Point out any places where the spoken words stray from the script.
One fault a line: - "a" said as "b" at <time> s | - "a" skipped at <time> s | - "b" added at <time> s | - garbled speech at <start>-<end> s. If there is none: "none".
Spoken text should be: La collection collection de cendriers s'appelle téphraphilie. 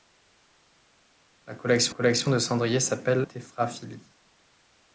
none